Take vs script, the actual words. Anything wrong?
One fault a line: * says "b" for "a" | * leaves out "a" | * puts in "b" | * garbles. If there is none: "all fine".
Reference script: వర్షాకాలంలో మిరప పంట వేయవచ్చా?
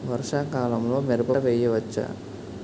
* leaves out "పంట"